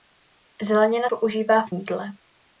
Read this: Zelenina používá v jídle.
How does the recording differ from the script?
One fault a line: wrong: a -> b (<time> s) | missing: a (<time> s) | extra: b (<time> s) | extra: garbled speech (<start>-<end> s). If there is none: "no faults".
no faults